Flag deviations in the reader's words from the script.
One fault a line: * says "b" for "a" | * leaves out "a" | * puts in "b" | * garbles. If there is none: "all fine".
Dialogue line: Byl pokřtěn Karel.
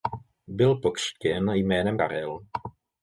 * puts in "jménem"